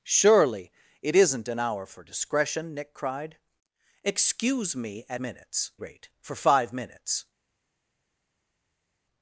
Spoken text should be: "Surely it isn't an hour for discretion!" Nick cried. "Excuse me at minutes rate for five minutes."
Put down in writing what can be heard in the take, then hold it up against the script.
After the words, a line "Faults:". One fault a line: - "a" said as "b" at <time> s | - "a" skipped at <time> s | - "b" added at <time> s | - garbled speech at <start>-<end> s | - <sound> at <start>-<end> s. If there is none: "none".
"Surely it isn't an hour for discretion!" Nick cried. "Excuse me at minutes rate for five minutes."
Faults:
none